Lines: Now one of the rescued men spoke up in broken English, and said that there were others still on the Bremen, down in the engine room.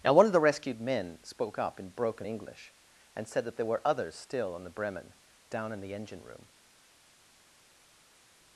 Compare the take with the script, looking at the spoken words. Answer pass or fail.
pass